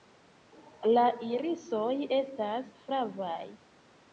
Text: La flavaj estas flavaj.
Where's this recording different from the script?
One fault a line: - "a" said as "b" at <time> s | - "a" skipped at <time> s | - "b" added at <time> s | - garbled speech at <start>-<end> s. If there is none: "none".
- "flavaj" said as "irisoj" at 1.3 s